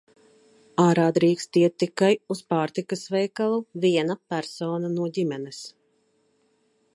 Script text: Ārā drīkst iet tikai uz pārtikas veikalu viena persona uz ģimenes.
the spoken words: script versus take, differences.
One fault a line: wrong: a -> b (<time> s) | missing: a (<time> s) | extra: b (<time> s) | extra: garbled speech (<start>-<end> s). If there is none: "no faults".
wrong: uz -> no (4.9 s)